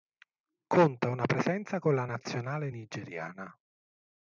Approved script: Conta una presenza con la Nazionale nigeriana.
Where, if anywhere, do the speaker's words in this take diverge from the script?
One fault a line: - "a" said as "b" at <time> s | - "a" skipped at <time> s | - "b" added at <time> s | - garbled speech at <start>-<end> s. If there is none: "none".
none